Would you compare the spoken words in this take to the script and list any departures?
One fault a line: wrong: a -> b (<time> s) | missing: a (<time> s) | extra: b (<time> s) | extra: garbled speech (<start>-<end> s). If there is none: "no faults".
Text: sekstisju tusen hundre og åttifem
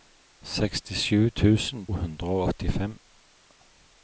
no faults